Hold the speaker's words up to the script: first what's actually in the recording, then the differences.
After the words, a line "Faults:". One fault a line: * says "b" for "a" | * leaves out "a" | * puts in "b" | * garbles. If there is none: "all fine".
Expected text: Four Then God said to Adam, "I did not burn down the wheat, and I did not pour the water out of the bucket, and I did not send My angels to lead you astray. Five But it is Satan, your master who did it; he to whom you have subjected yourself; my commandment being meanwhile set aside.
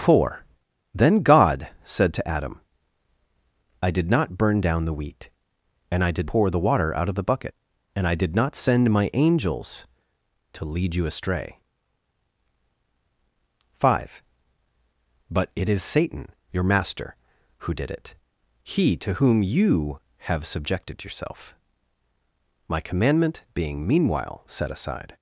Four Then God said to Adam, "I did not burn down the wheat, and I did pour the water out of the bucket, and I did not send My angels to lead you astray. Five But it is Satan, your master who did it; he to whom you have subjected yourself; my commandment being meanwhile set aside.
Faults:
* leaves out "not"